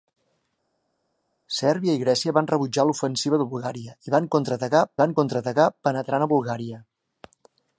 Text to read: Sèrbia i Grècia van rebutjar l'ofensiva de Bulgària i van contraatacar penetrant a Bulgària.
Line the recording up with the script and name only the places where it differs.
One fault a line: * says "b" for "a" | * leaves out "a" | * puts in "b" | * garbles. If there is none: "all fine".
* puts in "van contraatacar"